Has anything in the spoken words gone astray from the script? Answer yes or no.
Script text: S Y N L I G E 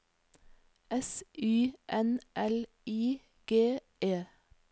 no